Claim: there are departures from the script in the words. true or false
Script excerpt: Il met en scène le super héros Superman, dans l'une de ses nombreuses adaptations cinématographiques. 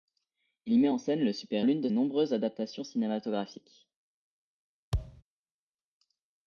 true